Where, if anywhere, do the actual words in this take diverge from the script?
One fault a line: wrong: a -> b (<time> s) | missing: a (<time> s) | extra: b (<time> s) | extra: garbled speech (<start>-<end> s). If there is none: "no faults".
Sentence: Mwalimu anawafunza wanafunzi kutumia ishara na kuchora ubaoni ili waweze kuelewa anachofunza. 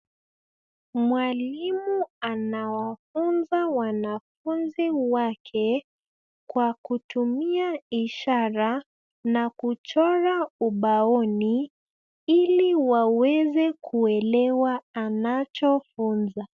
extra: wake kwa (4.9 s)